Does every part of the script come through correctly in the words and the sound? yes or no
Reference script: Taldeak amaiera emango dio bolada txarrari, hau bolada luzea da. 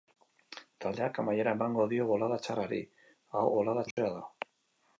no